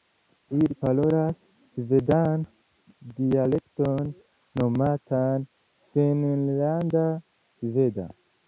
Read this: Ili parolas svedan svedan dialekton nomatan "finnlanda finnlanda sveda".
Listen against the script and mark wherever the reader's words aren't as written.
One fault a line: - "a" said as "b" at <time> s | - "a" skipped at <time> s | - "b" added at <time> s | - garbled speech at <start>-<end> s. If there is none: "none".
- "svedan" skipped at 2.5 s
- "finnlanda" skipped at 7.1 s